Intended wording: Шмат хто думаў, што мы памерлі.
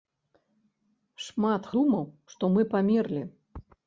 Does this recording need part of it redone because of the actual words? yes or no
yes